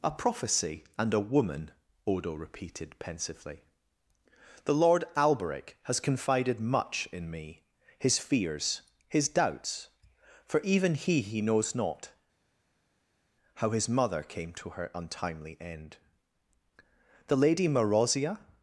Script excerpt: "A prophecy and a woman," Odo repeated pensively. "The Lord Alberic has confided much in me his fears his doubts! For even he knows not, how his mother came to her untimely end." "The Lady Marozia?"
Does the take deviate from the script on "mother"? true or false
false